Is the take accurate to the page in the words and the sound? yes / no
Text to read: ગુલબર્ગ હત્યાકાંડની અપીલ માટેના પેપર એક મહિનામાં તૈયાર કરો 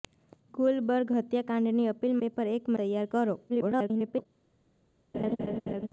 no